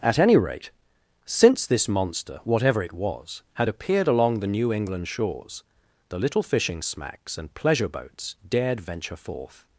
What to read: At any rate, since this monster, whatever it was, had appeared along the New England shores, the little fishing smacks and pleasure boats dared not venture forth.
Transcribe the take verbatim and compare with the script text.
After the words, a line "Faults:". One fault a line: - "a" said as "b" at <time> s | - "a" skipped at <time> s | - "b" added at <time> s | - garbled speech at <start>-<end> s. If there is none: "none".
At any rate, since this monster, whatever it was, had appeared along the New England shores, the little fishing smacks and pleasure boats dared venture forth.
Faults:
- "not" skipped at 8.8 s